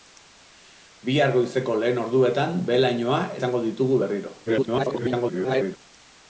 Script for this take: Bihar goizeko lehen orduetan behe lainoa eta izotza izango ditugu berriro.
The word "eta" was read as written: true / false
false